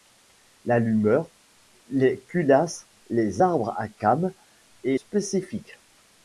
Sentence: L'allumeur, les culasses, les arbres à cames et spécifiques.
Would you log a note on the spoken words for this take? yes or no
no